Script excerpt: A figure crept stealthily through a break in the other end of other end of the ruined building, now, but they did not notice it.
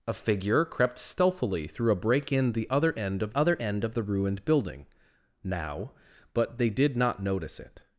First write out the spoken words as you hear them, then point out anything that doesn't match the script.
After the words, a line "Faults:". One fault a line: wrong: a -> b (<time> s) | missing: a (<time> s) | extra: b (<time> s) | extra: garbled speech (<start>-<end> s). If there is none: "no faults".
A figure crept stealthily through a break in the other end of other end of the ruined building, now, but they did not notice it.
Faults:
no faults